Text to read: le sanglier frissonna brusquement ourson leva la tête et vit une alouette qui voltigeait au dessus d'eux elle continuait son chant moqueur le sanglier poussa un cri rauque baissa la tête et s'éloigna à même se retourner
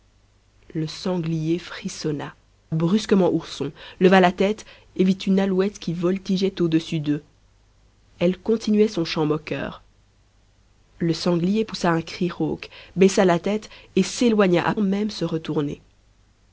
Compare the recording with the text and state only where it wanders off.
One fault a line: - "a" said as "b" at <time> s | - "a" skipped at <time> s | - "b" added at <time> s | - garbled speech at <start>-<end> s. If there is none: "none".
none